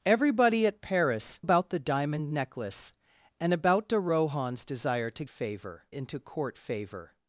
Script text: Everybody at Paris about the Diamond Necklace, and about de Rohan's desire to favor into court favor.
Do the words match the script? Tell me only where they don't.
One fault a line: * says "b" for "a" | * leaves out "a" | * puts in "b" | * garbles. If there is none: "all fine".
all fine